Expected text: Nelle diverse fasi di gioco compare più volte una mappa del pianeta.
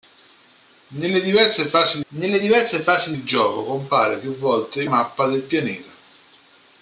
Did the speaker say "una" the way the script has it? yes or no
no